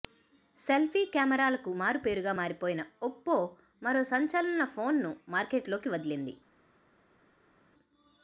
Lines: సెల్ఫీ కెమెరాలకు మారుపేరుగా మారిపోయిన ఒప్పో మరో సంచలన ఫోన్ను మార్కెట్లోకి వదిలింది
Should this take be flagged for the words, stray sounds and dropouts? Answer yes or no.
no